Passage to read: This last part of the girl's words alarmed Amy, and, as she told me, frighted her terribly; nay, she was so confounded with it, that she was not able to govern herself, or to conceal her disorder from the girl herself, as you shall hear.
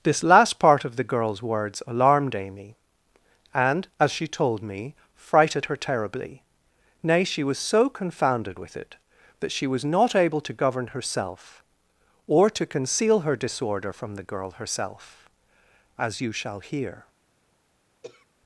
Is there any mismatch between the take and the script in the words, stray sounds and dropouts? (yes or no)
yes